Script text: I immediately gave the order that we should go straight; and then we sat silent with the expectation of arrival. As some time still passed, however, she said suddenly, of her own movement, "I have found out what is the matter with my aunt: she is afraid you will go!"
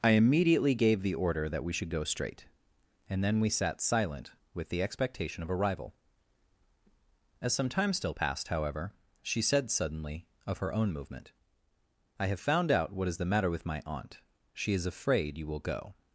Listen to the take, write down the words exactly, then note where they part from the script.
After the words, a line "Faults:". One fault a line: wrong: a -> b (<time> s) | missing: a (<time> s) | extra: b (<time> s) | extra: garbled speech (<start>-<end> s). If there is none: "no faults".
I immediately gave the order that we should go straight; and then we sat silent with the expectation of arrival. As some time still passed, however, she said suddenly, of her own movement, "I have found out what is the matter with my aunt: she is afraid you will go!"
Faults:
no faults